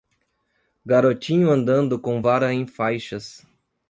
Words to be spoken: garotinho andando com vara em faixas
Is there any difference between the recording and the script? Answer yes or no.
no